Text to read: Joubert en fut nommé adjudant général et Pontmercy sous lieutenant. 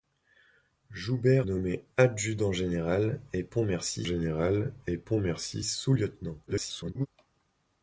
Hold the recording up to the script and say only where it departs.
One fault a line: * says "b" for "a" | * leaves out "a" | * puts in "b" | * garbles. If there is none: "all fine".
* says "nommé adjudant général et Pontmercy" for "en fut nommé adjudant"
* garbles